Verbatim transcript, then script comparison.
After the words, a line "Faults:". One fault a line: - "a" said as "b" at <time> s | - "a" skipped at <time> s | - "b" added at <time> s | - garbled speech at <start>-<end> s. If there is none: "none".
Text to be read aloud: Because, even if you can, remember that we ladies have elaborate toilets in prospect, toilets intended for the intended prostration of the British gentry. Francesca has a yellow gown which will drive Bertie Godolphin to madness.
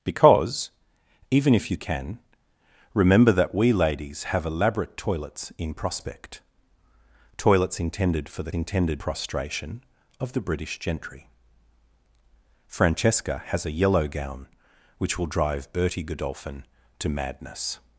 Because, even if you can, remember that we ladies have elaborate toilets in prospect, toilets intended for the intended prostration of the British gentry. Francesca has a yellow gown which will drive Bertie Godolphin to madness.
Faults:
none